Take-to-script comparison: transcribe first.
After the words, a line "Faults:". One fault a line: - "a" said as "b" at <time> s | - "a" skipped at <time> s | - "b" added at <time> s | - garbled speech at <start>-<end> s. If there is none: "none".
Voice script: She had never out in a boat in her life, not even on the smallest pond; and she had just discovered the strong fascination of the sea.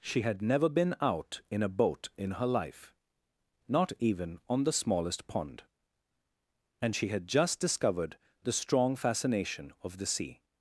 She had never been out in a boat in her life, not even on the smallest pond; and she had just discovered the strong fascination of the sea.
Faults:
- "been" added at 0.7 s